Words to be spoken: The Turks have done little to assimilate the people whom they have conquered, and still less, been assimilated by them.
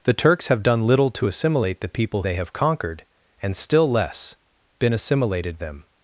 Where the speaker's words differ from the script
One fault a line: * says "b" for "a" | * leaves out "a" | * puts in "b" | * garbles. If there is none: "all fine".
* leaves out "whom"
* leaves out "by"